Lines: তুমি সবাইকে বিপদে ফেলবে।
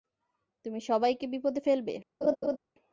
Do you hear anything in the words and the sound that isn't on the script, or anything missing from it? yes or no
yes